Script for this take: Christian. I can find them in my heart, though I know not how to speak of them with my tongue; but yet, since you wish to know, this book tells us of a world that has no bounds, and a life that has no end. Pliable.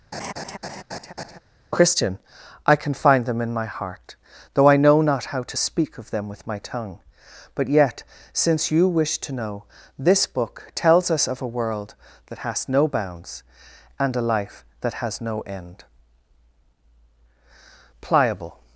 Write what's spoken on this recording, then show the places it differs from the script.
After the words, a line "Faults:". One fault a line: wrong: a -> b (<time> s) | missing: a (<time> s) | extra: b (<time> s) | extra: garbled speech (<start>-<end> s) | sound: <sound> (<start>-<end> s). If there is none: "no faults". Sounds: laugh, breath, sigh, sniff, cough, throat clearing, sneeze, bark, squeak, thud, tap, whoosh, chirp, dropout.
Christian. I can find them in my heart, though I know not how to speak of them with my tongue; but yet, since you wish to know, this book tells us of a world that has no bounds, and a life that has no end. Pliable.
Faults:
sound: laugh (0.1-1.4 s)